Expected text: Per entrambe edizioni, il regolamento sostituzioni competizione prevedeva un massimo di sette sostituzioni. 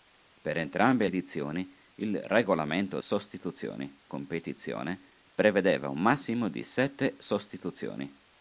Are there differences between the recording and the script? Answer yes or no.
no